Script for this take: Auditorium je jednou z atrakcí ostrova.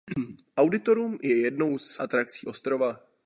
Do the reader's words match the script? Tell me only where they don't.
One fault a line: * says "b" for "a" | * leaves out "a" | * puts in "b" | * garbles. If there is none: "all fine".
all fine